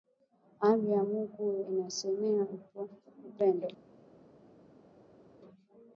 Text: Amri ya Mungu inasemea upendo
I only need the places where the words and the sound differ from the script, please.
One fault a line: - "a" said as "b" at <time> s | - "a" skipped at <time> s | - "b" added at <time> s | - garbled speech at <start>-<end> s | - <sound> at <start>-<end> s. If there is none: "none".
none